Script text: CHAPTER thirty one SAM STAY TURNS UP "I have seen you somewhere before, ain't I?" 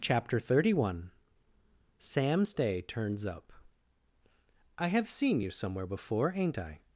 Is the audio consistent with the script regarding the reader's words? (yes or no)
yes